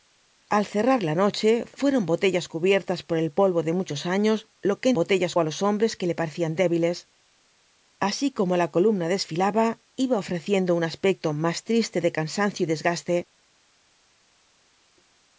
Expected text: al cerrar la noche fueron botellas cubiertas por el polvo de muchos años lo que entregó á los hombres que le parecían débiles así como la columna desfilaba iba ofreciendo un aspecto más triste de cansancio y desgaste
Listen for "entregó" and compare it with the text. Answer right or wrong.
wrong